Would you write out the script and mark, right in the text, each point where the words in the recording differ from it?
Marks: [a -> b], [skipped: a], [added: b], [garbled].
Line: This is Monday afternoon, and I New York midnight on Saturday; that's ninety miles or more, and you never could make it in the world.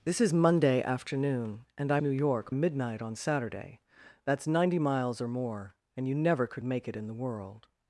This is Monday afternoon, and I New York midnight on Saturday; that's ninety miles or more, and you never could make it in the world.